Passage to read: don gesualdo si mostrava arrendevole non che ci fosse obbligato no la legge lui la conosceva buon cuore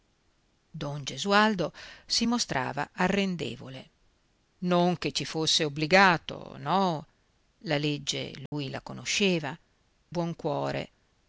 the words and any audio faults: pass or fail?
fail